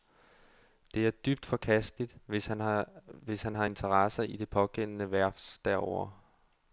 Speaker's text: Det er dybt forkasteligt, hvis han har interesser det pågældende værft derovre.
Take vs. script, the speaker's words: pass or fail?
fail